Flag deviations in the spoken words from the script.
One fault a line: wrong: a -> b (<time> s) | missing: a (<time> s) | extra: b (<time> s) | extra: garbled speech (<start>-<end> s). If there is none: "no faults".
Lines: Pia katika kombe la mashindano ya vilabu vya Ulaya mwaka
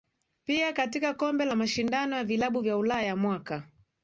no faults